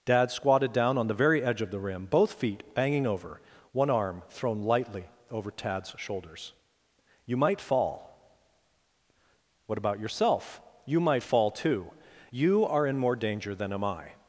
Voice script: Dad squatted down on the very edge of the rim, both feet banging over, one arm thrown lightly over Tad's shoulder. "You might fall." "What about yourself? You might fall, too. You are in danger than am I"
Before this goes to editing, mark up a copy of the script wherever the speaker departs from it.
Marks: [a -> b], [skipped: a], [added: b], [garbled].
Dad squatted down on the very edge of the rim, both feet banging over, one arm thrown lightly over Tad's [shoulder. -> shoulders] "You might fall." "What about yourself? You might fall, too. You are in [added: more] danger than am I"